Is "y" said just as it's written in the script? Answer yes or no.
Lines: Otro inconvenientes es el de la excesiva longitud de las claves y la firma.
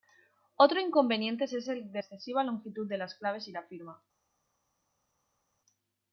yes